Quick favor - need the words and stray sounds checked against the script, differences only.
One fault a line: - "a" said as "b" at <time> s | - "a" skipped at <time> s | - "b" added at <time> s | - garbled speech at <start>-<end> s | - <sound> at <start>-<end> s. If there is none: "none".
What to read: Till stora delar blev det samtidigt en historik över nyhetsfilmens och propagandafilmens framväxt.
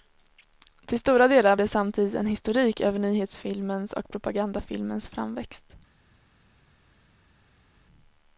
- "blev" skipped at 1.6 s